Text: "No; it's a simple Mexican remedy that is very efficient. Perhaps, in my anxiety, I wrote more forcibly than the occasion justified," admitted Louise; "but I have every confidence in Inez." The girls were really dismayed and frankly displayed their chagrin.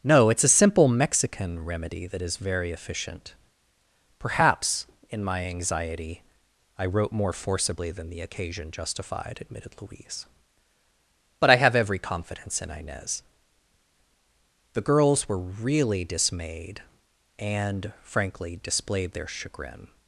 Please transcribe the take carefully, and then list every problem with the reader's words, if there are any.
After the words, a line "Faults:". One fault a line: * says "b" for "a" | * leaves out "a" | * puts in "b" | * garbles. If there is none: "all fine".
"No; it's a simple Mexican remedy that is very efficient. Perhaps, in my anxiety, I wrote more forcibly than the occasion justified," admitted Louise; "but I have every confidence in Inez." The girls were really dismayed and frankly displayed their chagrin.
Faults:
all fine